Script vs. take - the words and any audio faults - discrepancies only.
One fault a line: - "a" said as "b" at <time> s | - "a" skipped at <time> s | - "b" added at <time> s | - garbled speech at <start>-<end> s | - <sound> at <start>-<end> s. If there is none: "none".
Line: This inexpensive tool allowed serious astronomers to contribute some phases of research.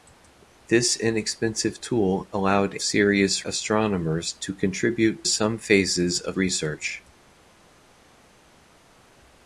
none